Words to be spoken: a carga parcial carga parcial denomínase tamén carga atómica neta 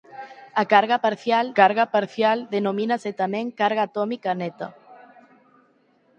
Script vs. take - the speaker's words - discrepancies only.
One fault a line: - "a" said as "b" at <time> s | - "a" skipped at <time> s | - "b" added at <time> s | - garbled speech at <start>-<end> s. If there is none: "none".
none